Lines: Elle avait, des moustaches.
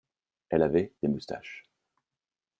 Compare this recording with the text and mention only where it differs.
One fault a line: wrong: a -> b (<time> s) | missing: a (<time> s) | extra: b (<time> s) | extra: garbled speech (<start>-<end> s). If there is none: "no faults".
no faults